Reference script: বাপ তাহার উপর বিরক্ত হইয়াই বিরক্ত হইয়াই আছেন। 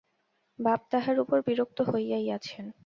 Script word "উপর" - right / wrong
right